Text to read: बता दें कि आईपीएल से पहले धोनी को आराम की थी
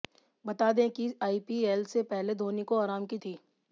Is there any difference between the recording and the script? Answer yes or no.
no